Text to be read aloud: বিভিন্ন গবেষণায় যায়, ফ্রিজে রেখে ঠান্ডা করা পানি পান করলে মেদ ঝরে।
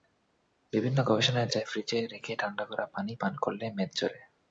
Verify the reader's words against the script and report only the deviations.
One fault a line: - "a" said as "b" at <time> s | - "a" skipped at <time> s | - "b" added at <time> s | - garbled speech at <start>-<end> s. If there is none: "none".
none